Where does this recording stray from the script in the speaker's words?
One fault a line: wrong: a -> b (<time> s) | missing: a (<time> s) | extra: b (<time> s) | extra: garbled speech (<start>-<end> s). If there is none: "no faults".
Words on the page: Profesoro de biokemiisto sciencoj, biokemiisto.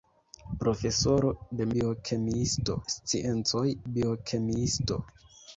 no faults